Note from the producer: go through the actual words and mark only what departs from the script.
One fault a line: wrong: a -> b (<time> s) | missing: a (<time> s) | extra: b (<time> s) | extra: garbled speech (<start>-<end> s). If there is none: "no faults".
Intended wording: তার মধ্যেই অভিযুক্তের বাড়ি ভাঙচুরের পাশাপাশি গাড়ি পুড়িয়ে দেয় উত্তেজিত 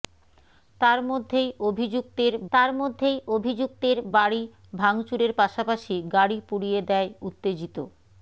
extra: তার মধ্যেই অভিযুক্তের (2.5 s)